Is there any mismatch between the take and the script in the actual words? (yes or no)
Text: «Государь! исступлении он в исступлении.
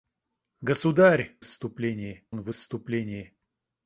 no